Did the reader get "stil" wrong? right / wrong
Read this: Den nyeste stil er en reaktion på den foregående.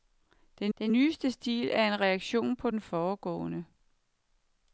right